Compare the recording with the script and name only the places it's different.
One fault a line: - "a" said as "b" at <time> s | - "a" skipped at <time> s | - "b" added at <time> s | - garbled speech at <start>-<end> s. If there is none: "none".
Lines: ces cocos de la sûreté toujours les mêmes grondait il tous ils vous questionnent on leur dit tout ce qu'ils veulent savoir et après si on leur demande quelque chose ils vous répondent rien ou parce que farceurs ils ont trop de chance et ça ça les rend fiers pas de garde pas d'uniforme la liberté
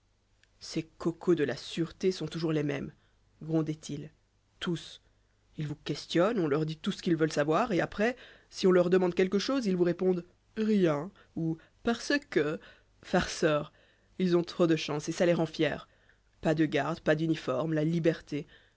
- "sont" added at 2.1 s
- "ça" skipped at 15.3 s